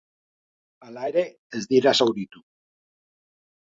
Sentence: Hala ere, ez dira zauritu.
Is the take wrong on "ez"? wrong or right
right